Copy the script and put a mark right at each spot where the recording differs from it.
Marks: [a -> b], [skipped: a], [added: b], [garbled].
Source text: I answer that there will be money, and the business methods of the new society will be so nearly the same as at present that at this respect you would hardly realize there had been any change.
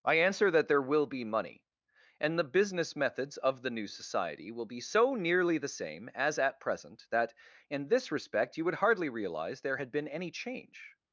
I answer that there will be money, and the business methods of the new society will be so nearly the same as at present that [at -> in] this respect you would hardly realize there had been any change.